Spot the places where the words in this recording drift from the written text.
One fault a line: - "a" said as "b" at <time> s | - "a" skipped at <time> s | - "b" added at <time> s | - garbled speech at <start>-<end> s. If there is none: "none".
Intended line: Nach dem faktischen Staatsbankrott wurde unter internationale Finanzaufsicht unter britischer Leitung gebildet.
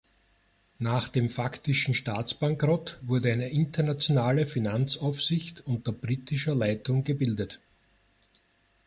- "unter" said as "eine" at 3.3 s